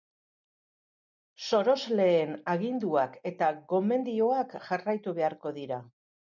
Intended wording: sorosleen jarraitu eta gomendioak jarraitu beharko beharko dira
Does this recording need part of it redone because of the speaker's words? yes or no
yes